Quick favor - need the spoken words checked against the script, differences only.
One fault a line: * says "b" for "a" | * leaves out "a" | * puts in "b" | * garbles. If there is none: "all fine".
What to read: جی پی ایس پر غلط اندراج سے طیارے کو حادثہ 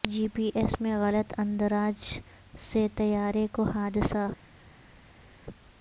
* says "میں" for "پر"